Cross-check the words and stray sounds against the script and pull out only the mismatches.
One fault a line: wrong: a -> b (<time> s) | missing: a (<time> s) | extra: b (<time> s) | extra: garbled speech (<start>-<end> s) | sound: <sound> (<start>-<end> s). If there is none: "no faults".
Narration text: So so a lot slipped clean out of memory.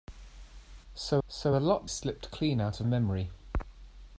no faults